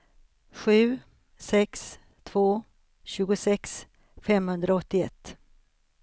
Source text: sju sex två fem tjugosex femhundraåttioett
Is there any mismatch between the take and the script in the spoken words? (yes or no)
yes